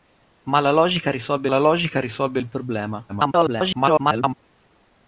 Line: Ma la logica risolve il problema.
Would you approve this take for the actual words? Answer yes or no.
no